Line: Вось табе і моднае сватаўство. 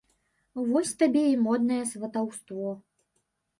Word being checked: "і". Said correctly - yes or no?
yes